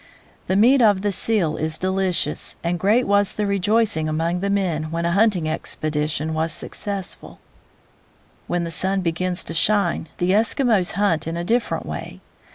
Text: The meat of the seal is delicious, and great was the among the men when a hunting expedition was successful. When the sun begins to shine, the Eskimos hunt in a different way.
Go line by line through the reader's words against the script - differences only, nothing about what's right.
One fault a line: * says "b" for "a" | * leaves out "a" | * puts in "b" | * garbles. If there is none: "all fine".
* puts in "rejoicing"